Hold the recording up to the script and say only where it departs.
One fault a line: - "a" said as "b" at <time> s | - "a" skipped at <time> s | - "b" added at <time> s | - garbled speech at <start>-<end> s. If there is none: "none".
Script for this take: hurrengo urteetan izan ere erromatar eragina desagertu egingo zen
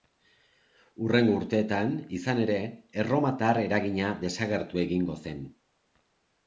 none